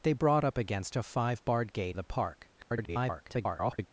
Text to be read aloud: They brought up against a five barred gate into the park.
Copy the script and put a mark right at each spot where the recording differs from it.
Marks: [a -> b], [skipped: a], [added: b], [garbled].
They brought up against a five barred gate [skipped: into] the park. [garbled]